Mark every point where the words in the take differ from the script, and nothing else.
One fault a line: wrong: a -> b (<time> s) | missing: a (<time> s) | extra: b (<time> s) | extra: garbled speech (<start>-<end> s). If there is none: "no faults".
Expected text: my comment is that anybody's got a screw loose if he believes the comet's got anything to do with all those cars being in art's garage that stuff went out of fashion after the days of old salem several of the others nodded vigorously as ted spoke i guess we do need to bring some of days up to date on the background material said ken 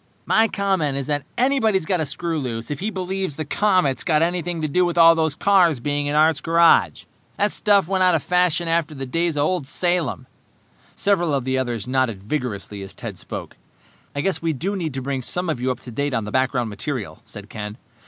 wrong: days -> you (15.6 s)